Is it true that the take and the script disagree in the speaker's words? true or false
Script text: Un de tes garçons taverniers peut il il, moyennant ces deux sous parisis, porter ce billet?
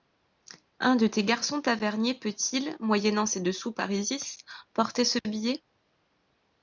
true